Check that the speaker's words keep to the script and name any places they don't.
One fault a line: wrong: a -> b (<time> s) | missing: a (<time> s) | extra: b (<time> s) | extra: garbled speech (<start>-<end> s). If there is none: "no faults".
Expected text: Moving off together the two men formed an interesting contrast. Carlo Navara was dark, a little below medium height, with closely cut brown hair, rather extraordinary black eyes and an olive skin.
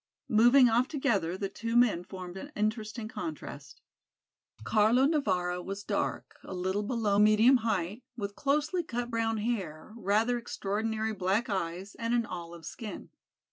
no faults